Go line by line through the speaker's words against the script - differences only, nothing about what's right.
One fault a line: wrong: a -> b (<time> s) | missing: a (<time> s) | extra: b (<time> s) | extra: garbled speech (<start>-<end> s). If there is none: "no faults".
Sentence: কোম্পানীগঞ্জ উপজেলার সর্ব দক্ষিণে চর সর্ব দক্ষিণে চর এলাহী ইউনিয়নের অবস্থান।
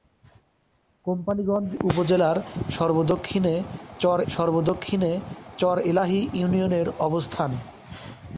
no faults